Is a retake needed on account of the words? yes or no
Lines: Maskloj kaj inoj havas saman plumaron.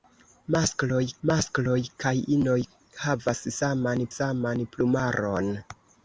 yes